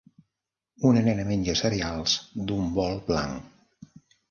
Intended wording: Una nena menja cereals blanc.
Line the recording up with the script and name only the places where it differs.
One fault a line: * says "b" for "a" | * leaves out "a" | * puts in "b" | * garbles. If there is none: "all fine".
* puts in "d'un bol"